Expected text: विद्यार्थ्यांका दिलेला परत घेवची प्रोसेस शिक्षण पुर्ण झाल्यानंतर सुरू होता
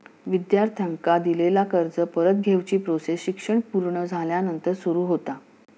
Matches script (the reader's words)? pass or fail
fail